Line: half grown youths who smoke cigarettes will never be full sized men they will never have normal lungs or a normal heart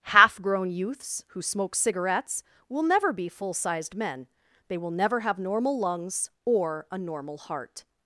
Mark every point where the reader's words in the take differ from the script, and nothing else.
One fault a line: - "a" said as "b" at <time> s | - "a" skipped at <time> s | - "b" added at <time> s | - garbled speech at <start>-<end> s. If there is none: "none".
none